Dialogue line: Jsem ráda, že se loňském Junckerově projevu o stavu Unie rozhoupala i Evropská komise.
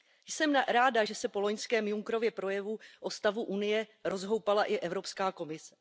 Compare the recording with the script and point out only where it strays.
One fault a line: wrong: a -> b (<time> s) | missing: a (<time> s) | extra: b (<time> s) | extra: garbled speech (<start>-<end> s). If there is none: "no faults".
extra: po (1.3 s)